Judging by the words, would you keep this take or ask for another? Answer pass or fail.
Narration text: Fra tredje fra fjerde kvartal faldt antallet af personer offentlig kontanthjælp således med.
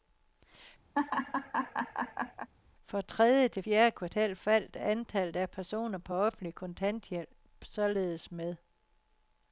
fail